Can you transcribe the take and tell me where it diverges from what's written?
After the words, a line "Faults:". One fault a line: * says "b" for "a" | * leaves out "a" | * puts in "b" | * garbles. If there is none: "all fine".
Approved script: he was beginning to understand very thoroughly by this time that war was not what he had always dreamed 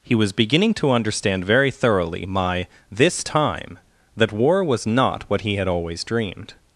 he was beginning to understand very thoroughly my this time that war was not what he had always dreamed
Faults:
* says "my" for "by"